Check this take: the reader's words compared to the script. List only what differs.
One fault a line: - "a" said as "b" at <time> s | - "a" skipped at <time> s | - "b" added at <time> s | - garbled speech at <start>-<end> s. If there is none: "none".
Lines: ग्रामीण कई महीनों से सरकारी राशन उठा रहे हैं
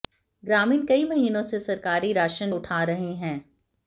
none